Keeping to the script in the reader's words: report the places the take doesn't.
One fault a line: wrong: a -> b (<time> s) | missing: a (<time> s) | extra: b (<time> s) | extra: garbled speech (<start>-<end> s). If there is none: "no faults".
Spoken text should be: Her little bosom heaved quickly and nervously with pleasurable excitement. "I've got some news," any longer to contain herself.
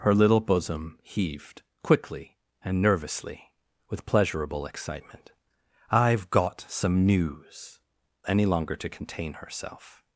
no faults